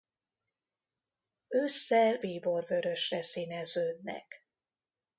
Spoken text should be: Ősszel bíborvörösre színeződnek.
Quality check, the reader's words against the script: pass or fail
pass